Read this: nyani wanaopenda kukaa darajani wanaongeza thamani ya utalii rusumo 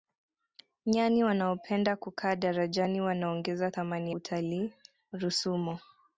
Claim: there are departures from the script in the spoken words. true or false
true